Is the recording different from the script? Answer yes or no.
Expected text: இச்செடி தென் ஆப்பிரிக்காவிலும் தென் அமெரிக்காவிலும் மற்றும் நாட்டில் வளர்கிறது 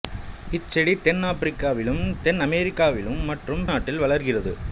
no